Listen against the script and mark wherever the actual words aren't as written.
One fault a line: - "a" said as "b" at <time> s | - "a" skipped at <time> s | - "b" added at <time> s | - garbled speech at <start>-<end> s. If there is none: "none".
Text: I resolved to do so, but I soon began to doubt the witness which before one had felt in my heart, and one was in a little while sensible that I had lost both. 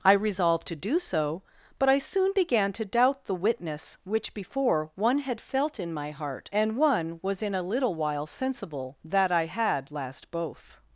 - "lost" said as "last" at 9.9 s